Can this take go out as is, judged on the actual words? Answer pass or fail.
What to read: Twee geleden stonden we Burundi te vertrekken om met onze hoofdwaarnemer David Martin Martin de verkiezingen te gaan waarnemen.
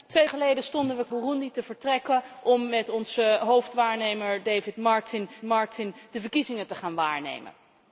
pass